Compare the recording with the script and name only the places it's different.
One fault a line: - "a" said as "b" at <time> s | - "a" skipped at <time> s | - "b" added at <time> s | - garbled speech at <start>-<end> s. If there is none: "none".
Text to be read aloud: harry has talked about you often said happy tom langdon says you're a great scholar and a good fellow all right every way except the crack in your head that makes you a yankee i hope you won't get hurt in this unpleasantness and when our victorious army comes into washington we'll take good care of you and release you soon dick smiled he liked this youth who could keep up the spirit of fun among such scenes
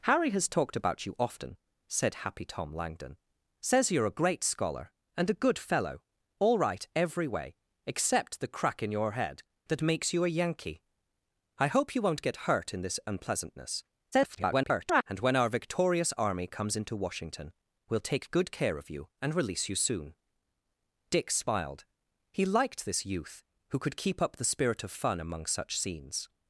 - garbled speech at 14.1-15.0 s